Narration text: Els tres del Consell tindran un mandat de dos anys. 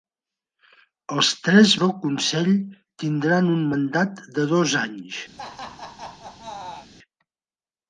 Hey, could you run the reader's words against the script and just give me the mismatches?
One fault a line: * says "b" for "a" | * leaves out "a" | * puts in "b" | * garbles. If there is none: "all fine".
all fine